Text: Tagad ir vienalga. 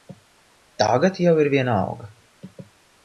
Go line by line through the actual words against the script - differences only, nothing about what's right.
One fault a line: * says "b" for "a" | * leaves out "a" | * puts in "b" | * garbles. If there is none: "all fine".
* puts in "jau"